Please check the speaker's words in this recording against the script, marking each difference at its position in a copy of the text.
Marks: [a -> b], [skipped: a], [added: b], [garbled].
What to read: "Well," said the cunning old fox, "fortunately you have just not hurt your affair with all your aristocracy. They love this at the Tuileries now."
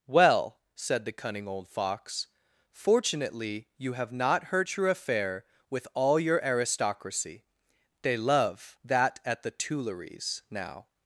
"Well," said the cunning old fox, "fortunately you have [skipped: just] not hurt your affair with all your aristocracy. They love [this -> that] at the Tuileries now."